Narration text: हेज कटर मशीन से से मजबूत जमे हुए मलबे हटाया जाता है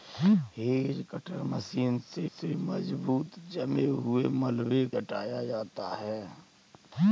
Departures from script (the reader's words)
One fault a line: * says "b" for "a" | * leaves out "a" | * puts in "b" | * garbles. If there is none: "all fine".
all fine